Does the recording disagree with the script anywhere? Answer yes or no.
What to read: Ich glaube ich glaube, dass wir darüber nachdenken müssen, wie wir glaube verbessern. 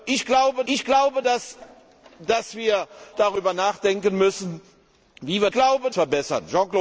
no